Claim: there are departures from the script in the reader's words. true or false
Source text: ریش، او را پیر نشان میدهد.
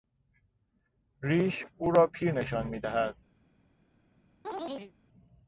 false